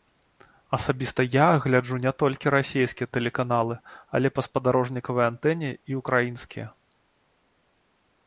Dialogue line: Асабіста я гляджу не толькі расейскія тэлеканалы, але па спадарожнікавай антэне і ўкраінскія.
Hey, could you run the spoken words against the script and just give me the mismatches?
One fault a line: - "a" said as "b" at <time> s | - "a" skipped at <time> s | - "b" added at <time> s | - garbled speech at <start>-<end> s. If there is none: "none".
none